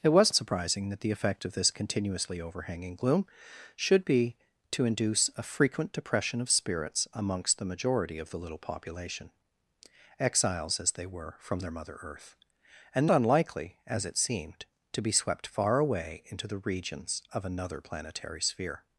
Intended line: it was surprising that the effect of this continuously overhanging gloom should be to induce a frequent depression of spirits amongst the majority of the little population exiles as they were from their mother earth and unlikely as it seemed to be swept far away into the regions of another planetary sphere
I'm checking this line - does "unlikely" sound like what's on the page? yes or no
yes